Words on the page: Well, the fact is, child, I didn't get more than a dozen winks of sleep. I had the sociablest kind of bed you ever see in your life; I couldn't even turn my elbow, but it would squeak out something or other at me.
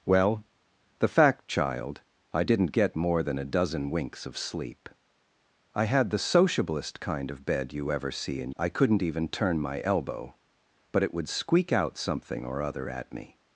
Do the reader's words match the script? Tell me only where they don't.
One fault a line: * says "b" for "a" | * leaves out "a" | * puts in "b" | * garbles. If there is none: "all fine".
* leaves out "is"
* leaves out "your life"